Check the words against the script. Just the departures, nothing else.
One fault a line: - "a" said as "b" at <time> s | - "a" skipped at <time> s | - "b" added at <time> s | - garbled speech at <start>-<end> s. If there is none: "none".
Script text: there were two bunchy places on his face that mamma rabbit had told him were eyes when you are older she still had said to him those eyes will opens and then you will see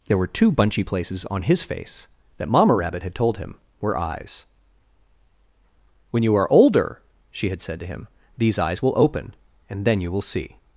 - "still" skipped at 7.5 s
- "those" said as "these" at 8.4 s
- "opens" said as "open" at 9.0 s